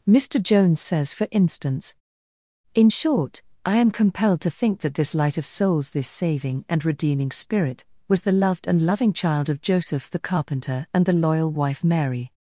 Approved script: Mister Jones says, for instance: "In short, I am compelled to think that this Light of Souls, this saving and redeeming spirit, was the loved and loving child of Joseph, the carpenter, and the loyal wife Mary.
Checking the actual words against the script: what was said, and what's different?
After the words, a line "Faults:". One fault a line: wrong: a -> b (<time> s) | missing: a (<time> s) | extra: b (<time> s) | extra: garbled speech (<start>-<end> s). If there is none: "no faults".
Mister Jones says, for instance: "In short, I am compelled to think that this Light of Souls, this saving and redeeming spirit, was the loved and loving child of Joseph, the carpenter, and the loyal wife Mary.
Faults:
no faults